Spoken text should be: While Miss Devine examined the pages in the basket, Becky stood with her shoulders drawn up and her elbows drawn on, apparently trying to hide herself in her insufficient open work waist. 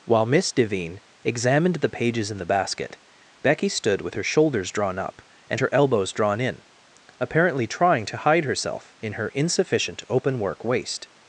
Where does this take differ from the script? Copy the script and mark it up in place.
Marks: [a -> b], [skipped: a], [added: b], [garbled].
While Miss Devine examined the pages in the basket, Becky stood with her shoulders drawn up and her elbows drawn [on, -> in] apparently trying to hide herself in her insufficient open work waist.